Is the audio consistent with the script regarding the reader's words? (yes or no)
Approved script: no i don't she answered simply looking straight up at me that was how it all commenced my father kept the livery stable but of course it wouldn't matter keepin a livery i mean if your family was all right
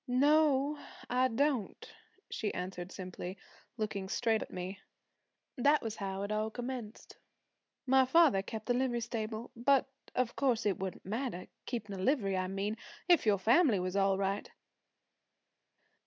no